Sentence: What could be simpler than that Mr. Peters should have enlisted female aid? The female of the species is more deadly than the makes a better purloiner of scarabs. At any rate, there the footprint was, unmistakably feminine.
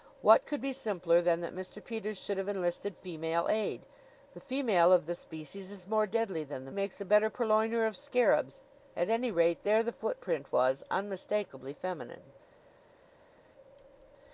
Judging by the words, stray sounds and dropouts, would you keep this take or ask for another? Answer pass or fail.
pass